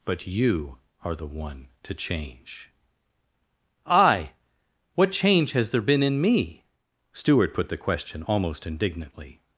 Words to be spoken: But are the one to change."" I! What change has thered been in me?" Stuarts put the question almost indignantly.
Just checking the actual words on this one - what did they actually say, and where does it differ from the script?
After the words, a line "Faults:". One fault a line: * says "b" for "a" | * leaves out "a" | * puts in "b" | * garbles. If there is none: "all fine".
But you are the one to change."" I! What change has there been in me?" Stuart put the question almost indignantly.
Faults:
* puts in "you"
* says "there" for "thered"
* says "Stuart" for "Stuarts"